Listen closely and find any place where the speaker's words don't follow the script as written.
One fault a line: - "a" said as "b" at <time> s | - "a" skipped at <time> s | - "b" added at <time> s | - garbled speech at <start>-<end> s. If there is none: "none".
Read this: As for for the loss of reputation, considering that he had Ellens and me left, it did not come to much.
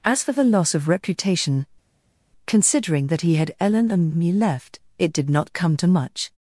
- "for" skipped at 0.3 s
- "Ellens" said as "Ellen" at 3.6 s